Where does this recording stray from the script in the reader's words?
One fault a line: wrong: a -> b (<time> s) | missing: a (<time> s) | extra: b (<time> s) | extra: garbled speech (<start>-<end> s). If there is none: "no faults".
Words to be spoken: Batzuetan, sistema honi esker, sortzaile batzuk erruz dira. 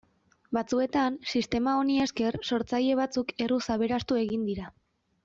extra: aberastu egin (3.8 s)